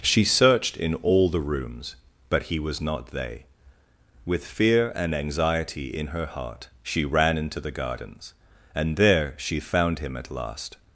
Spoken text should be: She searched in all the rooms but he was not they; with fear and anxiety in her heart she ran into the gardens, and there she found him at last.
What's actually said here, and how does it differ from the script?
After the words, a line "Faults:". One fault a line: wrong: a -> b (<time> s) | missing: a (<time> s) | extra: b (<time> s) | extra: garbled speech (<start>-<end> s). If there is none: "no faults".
She searched in all the rooms but he was not they; with fear and anxiety in her heart she ran into the gardens, and there she found him at last.
Faults:
no faults